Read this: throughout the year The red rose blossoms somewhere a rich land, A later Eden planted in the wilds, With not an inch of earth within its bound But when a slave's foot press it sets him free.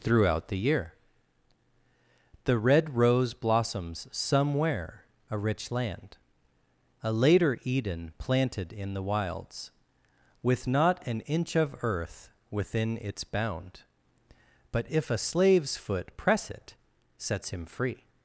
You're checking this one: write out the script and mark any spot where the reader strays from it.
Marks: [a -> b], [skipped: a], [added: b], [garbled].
throughout the year The red rose blossoms somewhere a rich land, A later Eden planted in the wilds, With not an inch of earth within its bound But [when -> if] a slave's foot press it sets him free.